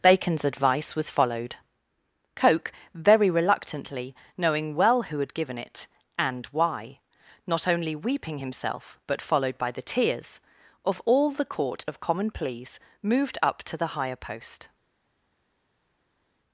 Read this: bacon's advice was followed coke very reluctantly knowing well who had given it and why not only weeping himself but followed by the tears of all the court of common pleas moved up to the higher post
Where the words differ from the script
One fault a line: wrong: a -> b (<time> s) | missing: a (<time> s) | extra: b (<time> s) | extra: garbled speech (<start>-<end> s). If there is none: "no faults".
no faults